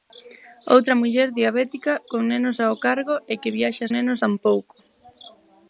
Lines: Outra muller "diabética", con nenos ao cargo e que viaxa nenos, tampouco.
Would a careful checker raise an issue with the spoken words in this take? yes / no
no